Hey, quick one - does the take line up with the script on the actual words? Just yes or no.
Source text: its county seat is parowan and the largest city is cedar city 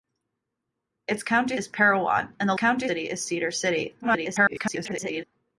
no